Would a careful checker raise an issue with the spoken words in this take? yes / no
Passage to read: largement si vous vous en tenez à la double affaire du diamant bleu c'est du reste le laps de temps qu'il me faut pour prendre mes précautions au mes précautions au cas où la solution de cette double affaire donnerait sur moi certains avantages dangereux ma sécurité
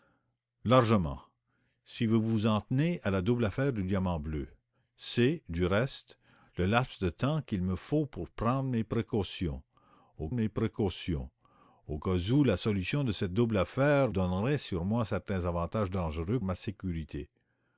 no